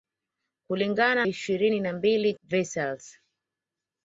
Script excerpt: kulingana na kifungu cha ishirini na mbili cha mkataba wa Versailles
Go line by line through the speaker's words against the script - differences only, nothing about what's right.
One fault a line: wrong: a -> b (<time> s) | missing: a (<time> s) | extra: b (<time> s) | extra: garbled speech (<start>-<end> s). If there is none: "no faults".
missing: na kifungu cha (1.2 s)
missing: cha mkataba wa (2.3 s)